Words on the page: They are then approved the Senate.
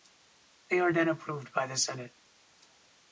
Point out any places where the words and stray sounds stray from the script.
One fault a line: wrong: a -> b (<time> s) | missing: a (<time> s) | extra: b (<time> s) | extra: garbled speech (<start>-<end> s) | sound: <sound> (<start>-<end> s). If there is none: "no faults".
extra: by (1.5 s)